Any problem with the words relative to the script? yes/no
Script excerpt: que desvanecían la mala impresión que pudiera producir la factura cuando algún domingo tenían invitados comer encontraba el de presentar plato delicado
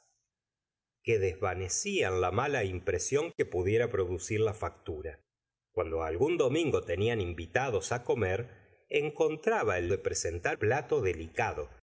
no